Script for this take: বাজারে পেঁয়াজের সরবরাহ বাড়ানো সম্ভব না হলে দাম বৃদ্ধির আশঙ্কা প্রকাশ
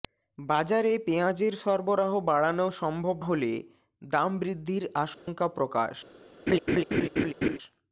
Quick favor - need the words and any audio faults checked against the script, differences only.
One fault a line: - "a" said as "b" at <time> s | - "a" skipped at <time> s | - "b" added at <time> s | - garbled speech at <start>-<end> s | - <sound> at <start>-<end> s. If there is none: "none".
- "না" skipped at 3.2 s
- dropout at 5.1-5.3 s
- laugh at 6.5-7.6 s